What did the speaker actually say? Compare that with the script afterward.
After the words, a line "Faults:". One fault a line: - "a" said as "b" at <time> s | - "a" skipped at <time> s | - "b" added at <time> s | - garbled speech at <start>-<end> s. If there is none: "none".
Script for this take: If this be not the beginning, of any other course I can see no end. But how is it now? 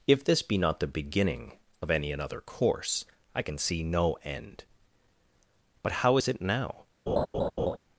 If this be not the beginning, of any another course I can see no end. But how is it now?
Faults:
- "other" said as "another" at 2.1 s